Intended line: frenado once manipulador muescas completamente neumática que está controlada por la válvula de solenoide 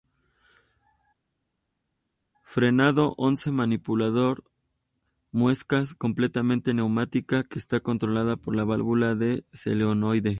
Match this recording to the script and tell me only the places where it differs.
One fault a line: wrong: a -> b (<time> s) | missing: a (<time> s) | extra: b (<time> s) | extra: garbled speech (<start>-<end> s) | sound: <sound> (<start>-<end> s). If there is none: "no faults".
no faults